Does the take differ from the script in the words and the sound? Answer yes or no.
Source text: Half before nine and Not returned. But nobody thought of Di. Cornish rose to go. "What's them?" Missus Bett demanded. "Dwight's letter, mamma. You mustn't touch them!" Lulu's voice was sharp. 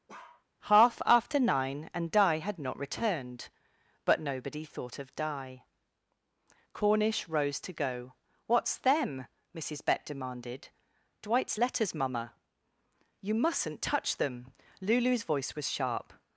yes